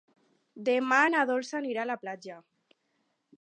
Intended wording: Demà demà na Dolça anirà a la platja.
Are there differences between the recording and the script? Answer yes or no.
yes